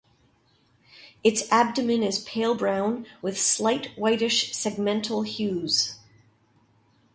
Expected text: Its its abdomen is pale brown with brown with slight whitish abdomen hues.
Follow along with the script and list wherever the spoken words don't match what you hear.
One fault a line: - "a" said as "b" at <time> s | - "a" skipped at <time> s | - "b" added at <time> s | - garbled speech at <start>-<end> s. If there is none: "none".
- "its" skipped at 1.4 s
- "brown with" skipped at 3.4 s
- "abdomen" said as "segmental" at 4.5 s